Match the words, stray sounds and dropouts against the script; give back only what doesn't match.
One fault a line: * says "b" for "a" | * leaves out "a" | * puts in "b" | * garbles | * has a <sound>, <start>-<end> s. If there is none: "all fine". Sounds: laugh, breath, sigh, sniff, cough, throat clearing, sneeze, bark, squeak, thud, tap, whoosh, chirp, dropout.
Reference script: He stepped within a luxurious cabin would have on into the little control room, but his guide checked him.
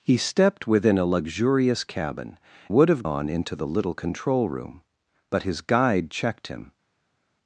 all fine